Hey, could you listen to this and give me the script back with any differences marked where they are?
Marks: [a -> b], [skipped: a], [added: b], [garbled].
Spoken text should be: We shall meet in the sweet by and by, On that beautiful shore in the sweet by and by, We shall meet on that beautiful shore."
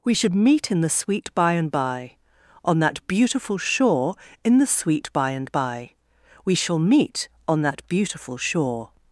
We [shall -> should] meet in the sweet by and by, On that beautiful shore in the sweet by and by, We shall meet on that beautiful shore."